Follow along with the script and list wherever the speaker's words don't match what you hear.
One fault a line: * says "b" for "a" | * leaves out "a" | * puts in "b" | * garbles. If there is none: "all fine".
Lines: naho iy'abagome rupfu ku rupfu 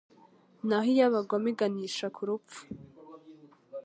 * says "iganisha" for "rupfu"